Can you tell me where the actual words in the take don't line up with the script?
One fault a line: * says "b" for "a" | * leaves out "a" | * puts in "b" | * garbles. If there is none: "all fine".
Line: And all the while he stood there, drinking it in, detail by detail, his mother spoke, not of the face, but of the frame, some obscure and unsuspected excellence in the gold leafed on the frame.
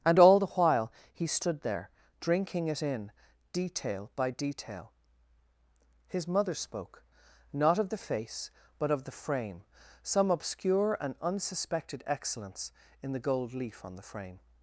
* says "leaf" for "leafed"